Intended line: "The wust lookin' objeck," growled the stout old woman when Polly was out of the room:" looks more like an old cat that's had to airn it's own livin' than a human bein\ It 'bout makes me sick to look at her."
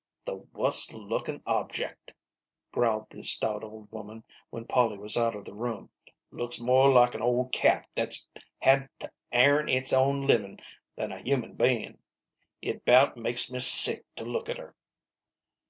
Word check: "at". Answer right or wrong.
right